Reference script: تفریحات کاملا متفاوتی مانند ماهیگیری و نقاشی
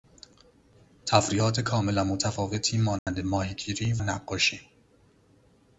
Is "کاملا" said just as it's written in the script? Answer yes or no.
yes